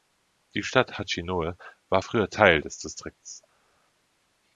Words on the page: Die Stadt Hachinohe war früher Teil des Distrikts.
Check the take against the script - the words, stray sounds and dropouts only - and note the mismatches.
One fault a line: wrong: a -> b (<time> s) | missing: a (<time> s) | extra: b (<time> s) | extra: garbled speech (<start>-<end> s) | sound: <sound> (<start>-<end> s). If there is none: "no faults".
no faults